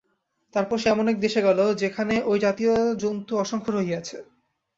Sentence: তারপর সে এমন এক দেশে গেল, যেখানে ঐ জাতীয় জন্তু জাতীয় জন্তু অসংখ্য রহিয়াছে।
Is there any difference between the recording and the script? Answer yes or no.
yes